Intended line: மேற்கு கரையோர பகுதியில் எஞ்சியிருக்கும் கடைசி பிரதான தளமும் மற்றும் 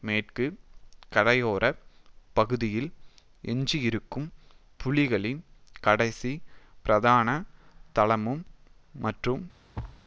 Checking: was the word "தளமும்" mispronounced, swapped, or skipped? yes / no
no